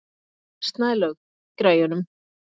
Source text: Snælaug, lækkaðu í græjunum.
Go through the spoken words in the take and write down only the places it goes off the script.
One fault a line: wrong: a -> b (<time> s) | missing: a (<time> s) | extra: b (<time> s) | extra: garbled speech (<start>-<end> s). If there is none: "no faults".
missing: lækkaðu (1.2 s)